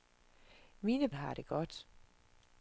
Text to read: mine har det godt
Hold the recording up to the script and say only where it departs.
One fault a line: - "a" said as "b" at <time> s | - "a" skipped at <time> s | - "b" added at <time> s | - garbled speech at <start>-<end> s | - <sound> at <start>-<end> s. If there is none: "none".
none